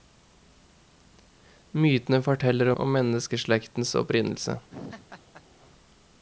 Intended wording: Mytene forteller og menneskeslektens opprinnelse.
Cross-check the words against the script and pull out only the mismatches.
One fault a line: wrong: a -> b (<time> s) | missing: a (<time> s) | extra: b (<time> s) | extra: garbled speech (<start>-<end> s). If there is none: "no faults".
no faults